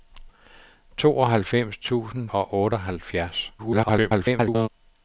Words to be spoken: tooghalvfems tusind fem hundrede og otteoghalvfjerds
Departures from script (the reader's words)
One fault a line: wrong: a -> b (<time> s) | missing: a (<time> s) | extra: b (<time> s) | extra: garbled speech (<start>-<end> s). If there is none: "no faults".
missing: fem hundrede (2.3 s)
extra: garbled speech (3.6-4.7 s)